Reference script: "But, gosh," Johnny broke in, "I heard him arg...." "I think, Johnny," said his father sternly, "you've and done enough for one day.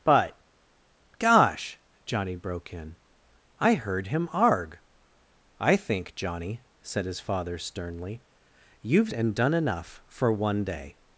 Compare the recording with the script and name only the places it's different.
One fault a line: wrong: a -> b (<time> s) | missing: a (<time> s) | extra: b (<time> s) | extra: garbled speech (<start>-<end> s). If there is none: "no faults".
no faults